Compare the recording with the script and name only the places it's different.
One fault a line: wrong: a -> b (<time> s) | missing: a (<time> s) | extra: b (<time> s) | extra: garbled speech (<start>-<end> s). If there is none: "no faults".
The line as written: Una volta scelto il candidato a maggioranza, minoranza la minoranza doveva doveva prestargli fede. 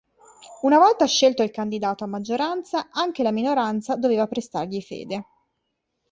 wrong: minoranza -> anche (2.9 s)
missing: doveva (4.2 s)